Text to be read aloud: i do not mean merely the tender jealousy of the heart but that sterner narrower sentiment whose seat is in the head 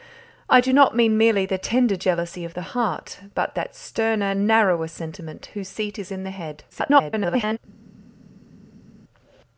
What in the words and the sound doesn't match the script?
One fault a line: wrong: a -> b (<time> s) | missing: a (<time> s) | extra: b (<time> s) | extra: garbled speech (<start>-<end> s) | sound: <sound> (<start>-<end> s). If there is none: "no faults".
extra: garbled speech (6.7-7.6 s)